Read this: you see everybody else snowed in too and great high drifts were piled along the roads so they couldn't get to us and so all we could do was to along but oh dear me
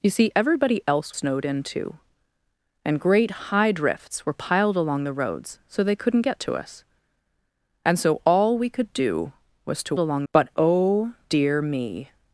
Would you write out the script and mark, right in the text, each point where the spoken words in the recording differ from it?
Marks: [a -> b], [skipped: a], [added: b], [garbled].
you see everybody else snowed in too and great high drifts were piled along the roads so they couldn't get to us and so all we could do was to along but oh dear me